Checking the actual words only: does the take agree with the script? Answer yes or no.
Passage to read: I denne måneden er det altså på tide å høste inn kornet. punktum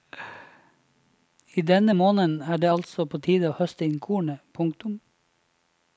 yes